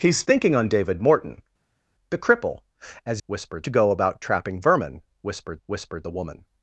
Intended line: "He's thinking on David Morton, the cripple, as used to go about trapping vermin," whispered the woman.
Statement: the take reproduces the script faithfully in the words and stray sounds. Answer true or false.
false